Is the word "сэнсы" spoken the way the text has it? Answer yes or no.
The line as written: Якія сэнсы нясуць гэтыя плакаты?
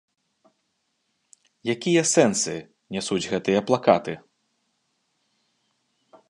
yes